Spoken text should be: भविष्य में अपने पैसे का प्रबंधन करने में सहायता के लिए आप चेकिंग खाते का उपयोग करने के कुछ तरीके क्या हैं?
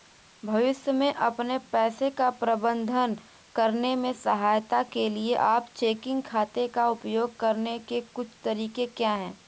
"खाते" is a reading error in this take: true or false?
false